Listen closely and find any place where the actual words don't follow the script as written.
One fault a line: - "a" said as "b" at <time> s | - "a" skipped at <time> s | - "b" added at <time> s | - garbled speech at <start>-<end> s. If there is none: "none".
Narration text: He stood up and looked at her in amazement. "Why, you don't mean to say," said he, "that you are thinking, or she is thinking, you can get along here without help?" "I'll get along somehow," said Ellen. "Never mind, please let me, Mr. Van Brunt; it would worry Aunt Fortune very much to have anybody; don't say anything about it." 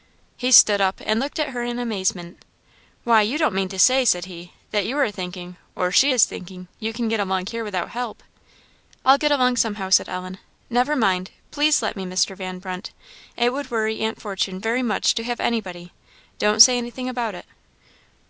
none